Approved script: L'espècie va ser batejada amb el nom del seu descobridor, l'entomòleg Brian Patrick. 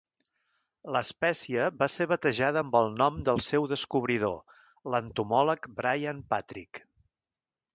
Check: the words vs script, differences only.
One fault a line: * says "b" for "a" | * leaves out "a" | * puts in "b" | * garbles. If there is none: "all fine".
all fine